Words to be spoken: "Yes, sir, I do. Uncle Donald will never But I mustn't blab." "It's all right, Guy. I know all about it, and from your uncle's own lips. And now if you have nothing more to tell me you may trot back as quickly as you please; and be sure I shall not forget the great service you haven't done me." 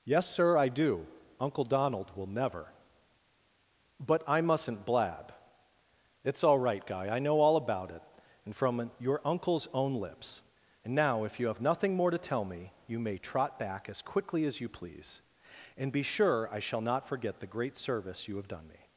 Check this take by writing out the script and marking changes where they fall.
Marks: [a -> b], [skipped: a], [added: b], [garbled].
"Yes, sir, I do. Uncle Donald will never But I mustn't blab." "It's all right, Guy. I know all about it, and from your uncle's own lips. And now if you have nothing more to tell me you may trot back as quickly as you please; and be sure I shall not forget the great service you [haven't -> have] done me."